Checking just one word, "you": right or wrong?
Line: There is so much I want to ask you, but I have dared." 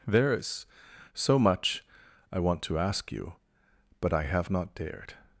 right